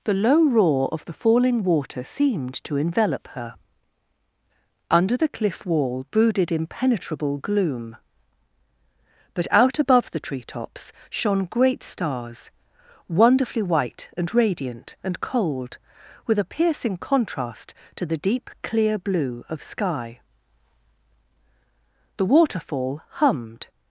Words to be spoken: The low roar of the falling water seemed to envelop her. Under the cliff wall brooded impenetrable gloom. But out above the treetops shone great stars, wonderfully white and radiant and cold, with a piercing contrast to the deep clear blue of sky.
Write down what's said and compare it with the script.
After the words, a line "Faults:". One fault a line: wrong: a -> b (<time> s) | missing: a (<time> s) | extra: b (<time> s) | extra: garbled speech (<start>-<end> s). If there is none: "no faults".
The low roar of the falling water seemed to envelop her. Under the cliff wall brooded impenetrable gloom. But out above the treetops shone great stars, wonderfully white and radiant and cold, with a piercing contrast to the deep clear blue of sky. The waterfall hummed
Faults:
extra: The waterfall hummed (22.2 s)